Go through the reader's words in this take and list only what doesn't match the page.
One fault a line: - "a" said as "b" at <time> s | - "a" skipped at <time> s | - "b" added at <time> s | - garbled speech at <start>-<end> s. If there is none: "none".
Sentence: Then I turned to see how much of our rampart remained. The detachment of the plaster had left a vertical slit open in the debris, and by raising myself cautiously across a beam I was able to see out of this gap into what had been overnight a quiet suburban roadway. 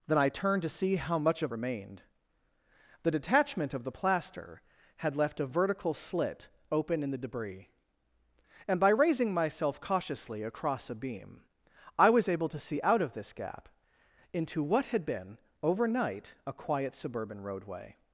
- "our rampart" skipped at 1.5 s